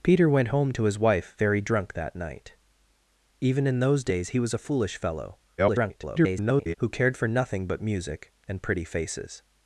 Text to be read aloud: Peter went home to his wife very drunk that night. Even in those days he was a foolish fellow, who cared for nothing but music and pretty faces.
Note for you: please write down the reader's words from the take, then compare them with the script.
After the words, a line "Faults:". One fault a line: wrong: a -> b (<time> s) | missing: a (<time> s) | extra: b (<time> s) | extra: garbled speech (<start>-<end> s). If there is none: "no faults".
Peter went home to his wife very drunk that night. Even in those days he was a foolish fellow, [garbled] who cared for nothing but music and pretty faces.
Faults:
extra: garbled speech (5.6-6.7 s)